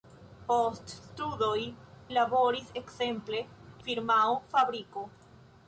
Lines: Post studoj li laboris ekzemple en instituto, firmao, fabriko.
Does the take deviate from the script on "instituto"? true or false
true